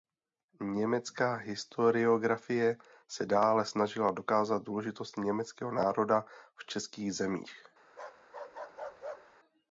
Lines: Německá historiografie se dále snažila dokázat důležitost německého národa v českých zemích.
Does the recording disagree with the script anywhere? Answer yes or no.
no